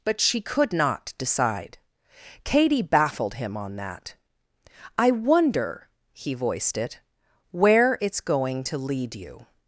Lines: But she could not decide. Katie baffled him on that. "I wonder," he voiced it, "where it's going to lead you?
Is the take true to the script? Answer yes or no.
yes